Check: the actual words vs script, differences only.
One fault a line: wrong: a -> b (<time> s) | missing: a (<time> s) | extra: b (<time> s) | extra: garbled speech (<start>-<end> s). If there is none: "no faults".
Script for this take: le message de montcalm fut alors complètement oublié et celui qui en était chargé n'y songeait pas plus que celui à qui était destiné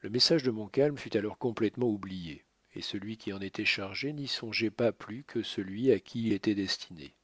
no faults